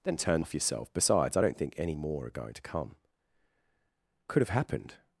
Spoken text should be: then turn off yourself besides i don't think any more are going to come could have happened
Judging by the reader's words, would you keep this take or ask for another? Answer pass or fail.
pass